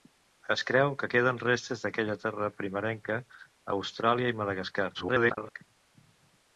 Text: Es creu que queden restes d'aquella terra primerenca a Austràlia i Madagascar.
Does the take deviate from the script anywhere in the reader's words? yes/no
yes